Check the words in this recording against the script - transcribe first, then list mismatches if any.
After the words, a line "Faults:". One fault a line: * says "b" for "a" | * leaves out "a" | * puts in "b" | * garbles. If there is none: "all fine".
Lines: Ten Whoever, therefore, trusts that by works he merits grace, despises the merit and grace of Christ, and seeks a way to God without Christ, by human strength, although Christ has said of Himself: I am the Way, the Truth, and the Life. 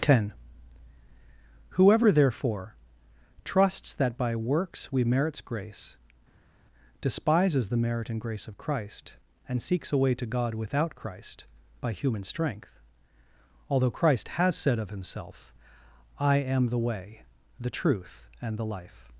Ten Whoever, therefore, trusts that by works we merits grace, despises the merit and grace of Christ, and seeks a way to God without Christ, by human strength, although Christ has said of Himself: I am the Way, the Truth, and the Life.
Faults:
* says "we" for "he"